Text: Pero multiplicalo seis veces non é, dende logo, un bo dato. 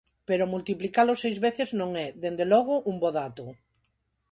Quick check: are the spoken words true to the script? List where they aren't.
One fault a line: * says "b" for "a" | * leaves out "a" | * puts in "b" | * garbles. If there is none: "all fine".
all fine